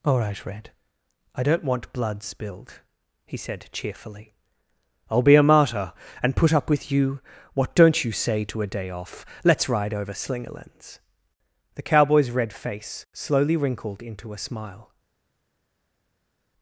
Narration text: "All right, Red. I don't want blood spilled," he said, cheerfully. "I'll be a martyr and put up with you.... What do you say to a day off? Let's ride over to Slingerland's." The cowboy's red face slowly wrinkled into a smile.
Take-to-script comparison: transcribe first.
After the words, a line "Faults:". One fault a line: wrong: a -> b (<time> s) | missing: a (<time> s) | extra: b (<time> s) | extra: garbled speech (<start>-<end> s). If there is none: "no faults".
"All right, Red. I don't want blood spilled," he said, cheerfully. "I'll be a martyr and put up with you.... What don't you say to a day off? Let's ride over Slingerland's." The cowboy's red face slowly wrinkled into a smile.
Faults:
wrong: do -> don't (7.8 s)
missing: to (10.1 s)